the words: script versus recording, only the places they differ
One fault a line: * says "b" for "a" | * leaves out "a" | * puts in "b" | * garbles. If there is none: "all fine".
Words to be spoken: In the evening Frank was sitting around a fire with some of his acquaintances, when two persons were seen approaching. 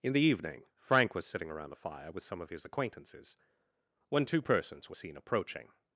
all fine